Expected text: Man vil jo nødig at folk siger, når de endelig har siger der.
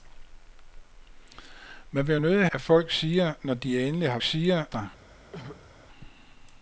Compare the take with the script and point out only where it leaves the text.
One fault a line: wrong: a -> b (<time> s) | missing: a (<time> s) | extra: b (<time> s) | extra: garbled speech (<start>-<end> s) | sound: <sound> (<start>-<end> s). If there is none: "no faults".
sound: throat clearing (5.3-5.7 s)